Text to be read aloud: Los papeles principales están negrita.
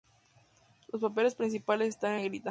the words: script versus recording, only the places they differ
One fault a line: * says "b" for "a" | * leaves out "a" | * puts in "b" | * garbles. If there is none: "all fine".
all fine